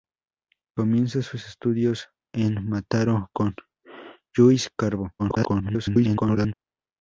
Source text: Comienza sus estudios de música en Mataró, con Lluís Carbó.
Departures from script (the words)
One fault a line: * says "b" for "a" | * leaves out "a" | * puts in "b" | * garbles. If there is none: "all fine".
* leaves out "de música"
* garbles